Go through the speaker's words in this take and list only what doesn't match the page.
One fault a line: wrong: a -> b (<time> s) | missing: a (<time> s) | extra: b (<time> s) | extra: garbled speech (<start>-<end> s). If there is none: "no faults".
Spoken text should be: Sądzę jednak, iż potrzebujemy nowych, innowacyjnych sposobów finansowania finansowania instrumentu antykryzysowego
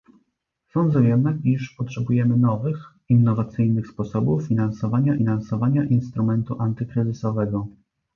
no faults